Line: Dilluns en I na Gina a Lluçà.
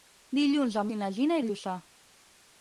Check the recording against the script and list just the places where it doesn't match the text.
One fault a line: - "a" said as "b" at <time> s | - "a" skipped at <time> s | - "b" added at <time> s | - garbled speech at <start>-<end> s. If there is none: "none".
none